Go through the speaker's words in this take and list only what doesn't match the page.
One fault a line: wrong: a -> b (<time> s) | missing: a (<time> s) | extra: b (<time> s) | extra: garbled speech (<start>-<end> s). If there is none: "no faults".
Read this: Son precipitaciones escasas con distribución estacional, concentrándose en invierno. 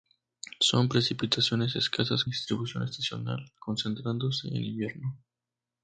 missing: con (2.2 s)